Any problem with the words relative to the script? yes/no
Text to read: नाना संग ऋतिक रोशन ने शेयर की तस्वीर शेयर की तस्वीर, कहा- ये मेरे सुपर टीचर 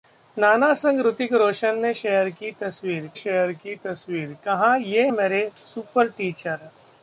no